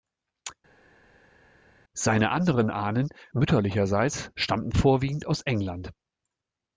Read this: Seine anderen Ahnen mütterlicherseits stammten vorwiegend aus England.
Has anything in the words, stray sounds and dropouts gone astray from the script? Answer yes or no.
no